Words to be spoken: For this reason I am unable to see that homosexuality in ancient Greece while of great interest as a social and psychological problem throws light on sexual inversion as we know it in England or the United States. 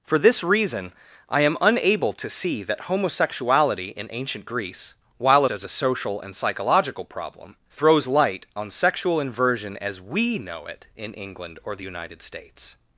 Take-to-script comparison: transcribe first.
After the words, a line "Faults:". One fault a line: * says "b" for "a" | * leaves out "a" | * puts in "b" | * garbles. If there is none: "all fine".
For this reason I am unable to see that homosexuality in ancient Greece while as a social and psychological problem throws light on sexual inversion as we know it in England or the United States.
Faults:
* leaves out "of great interest"